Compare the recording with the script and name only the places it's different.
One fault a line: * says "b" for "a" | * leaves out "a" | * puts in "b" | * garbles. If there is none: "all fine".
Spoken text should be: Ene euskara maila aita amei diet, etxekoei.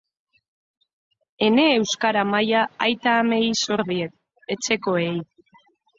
* puts in "zor"